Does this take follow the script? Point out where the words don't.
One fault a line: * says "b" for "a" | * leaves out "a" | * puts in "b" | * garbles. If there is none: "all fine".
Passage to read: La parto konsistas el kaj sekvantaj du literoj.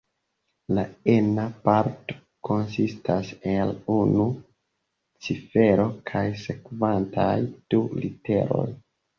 * puts in "ena"
* puts in "unu cifero"